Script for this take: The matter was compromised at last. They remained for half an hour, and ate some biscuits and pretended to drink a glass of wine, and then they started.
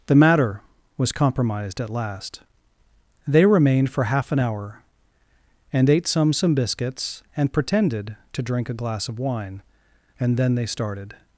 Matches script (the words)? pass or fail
fail